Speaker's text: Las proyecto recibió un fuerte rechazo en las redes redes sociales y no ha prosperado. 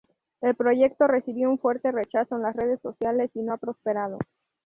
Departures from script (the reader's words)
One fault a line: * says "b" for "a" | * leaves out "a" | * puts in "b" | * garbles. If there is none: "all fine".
* says "El" for "Las"
* leaves out "redes"